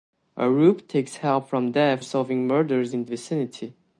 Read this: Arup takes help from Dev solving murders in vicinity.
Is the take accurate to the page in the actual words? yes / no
yes